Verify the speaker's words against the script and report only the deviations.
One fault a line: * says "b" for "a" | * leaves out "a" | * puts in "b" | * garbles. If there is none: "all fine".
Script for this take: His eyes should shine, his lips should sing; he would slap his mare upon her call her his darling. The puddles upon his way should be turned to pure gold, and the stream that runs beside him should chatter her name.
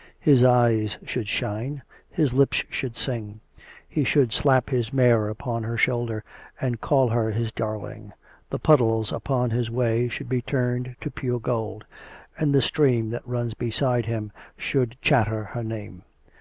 * says "should" for "would"
* puts in "shoulder and"